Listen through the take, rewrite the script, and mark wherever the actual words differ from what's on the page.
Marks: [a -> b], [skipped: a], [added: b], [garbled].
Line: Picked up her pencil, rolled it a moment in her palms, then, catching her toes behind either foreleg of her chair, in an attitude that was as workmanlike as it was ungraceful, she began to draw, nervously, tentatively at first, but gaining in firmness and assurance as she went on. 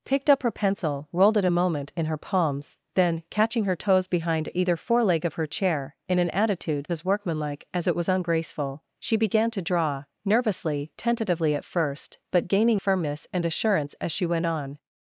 Picked up her pencil, rolled it a moment in her palms, then, catching her toes behind either foreleg of her chair, in an attitude [skipped: that was] as workmanlike as it was ungraceful, she began to draw, nervously, tentatively at first, but gaining [skipped: in] firmness and assurance as she went on.